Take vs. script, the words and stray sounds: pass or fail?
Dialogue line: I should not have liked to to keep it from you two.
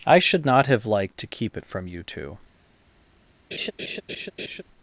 fail